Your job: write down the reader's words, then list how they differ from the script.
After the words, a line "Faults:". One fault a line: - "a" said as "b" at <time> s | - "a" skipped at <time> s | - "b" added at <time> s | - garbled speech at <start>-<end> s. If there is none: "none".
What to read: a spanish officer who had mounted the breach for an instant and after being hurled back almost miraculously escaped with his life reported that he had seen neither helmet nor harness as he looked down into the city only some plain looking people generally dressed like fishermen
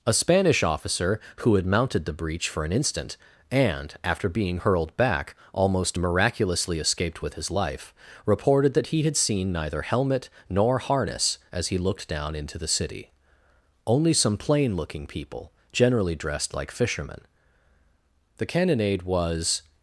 a spanish officer who had mounted the breach for an instant and after being hurled back almost miraculously escaped with his life reported that he had seen neither helmet nor harness as he looked down into the city only some plain looking people generally dressed like fishermen the cannonade was
Faults:
- "the cannonade was" added at 18.4 s